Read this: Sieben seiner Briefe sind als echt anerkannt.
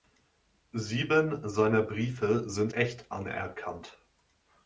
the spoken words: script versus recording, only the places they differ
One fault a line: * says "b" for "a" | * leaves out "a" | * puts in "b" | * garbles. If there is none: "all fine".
* leaves out "als"